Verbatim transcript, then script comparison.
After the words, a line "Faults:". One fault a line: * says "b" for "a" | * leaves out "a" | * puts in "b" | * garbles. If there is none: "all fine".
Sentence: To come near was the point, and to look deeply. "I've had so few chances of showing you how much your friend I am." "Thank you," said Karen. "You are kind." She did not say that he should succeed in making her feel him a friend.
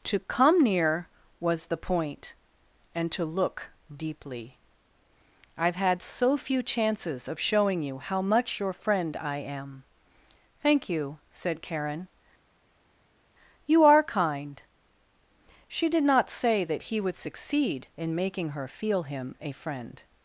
To come near was the point, and to look deeply. "I've had so few chances of showing you how much your friend I am." "Thank you," said Karen. "You are kind." She did not say that he would succeed in making her feel him a friend.
Faults:
* says "would" for "should"